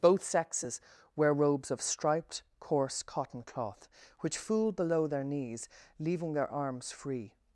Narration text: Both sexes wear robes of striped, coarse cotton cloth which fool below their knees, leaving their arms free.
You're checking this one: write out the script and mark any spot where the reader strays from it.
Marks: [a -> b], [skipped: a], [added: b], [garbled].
Both sexes wear robes of striped, coarse cotton cloth which fool below their knees, leaving their arms free.